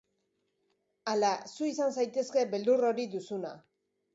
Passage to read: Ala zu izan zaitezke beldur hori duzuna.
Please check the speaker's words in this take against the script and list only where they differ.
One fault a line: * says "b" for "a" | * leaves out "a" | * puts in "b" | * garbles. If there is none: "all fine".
all fine